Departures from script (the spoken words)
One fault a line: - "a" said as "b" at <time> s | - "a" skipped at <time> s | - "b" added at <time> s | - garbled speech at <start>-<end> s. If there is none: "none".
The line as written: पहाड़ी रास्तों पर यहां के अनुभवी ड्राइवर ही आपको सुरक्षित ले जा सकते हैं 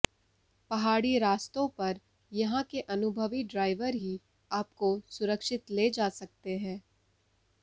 none